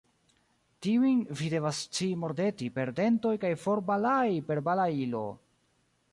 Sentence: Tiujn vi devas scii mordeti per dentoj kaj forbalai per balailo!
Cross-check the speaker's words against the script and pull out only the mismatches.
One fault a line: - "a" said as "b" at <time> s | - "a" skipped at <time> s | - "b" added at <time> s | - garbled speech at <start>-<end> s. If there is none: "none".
none